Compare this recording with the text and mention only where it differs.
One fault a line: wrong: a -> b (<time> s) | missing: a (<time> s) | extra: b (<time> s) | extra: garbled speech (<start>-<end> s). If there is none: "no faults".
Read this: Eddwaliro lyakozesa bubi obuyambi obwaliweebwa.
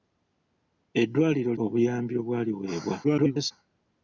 missing: lyakozesa bubi (1.5 s)
extra: garbled speech (3.0-3.5 s)